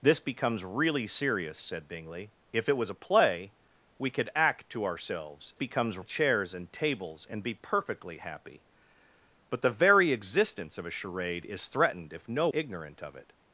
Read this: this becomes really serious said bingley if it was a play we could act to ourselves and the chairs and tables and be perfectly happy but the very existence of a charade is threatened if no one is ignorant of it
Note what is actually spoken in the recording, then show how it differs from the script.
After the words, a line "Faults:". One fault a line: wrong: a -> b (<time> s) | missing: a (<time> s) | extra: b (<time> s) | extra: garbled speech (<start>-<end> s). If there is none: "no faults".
this becomes really serious said bingley if it was a play we could act to ourselves becomes the chairs and tables and be perfectly happy but the very existence of a charade is threatened if no ignorant of it
Faults:
wrong: and -> becomes (5.5 s)
missing: one is (12.5 s)